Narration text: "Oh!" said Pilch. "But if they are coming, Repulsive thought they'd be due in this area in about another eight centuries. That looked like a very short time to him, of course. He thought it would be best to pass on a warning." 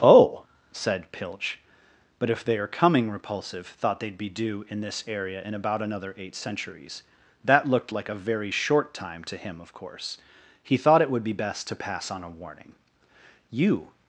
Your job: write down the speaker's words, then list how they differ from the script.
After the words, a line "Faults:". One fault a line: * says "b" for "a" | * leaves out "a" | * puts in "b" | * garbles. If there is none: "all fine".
"Oh!" said Pilch. "But if they are coming, Repulsive thought they'd be due in this area in about another eight centuries. That looked like a very short time to him, of course. He thought it would be best to pass on a warning." "You
Faults:
* puts in "You"